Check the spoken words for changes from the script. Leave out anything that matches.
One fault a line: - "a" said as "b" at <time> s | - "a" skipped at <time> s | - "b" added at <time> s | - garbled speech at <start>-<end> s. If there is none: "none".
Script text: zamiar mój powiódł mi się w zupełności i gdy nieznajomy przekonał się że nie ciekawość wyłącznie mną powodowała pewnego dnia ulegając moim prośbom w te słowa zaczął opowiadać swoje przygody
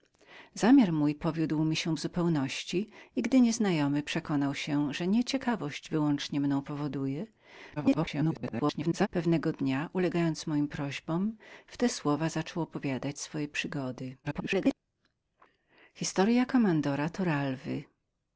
- garbled speech at 7.8-9.1 s
- garbled speech at 14.2-14.7 s